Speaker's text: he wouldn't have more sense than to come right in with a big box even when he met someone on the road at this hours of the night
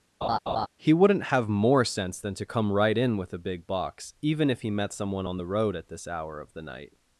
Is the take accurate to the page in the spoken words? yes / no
no